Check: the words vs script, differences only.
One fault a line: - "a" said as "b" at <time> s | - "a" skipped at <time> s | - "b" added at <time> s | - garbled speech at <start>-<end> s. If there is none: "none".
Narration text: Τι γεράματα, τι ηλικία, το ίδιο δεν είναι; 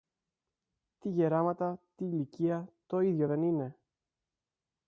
none